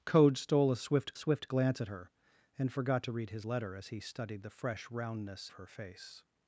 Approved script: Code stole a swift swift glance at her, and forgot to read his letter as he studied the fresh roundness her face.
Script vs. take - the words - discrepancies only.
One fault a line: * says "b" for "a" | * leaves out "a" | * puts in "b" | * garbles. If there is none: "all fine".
all fine